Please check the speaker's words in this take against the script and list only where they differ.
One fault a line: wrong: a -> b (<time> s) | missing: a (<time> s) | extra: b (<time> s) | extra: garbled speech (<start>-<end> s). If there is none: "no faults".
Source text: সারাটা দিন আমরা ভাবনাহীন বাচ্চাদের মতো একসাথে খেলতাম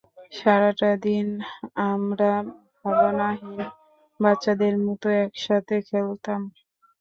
no faults